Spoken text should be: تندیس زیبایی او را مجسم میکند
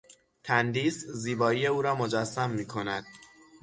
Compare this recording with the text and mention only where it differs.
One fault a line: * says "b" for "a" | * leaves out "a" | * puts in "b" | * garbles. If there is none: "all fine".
all fine